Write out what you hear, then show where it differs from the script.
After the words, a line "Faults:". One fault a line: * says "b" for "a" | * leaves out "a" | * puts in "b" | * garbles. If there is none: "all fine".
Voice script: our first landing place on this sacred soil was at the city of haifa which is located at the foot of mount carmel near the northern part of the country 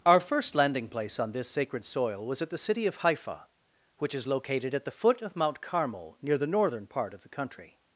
our first landing place on this sacred soil was at the city of haifa which is located at the foot of mount carmel near the northern part of the country
Faults:
all fine